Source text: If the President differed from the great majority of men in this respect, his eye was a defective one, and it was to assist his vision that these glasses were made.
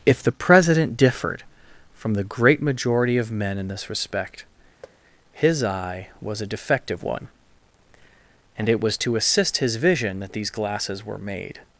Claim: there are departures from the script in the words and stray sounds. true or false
true